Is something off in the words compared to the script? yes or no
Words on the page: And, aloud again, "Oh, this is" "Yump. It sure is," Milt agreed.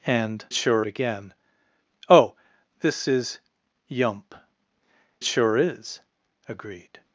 yes